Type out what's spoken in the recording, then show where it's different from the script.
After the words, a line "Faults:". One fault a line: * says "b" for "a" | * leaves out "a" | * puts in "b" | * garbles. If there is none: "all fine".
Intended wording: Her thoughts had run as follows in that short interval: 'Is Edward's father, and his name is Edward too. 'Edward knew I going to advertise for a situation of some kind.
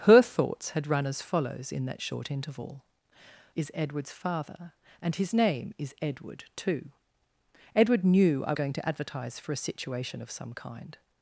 Her thoughts had run as follows in that short interval: 'Is Edward's father, and his name is Edward too. 'Edward knew I going to advertise for a situation of some kind.
Faults:
all fine